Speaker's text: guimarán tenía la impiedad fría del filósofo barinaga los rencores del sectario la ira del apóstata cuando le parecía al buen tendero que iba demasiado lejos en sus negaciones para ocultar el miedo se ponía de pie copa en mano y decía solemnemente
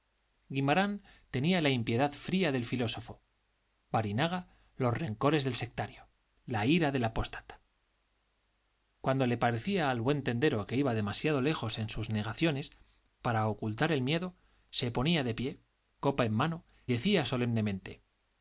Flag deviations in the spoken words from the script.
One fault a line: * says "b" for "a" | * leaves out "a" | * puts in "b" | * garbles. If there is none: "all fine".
* leaves out "y"